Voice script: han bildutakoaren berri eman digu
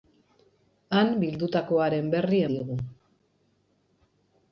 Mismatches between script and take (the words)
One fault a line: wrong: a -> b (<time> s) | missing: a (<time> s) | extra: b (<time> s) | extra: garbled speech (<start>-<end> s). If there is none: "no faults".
missing: eman (2.4 s)